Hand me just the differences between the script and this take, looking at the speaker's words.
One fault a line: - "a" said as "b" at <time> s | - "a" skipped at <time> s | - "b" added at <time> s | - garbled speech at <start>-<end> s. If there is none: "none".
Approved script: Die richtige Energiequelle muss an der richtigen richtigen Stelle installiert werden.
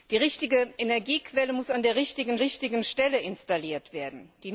none